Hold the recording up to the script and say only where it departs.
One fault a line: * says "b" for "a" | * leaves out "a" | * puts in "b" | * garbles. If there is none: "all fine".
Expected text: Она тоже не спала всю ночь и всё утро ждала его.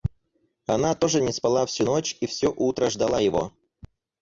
all fine